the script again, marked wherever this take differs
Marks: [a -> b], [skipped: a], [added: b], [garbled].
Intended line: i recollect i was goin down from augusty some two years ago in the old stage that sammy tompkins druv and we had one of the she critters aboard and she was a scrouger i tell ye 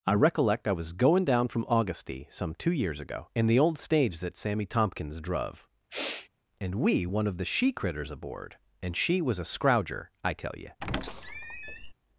i recollect i was goin down from augusty some two years ago in the old stage that sammy tompkins druv and we [skipped: had] one of the she critters aboard and she was a scrouger i tell ye